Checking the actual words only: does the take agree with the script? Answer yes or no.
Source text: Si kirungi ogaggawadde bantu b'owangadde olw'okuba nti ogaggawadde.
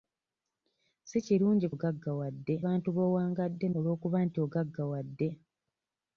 yes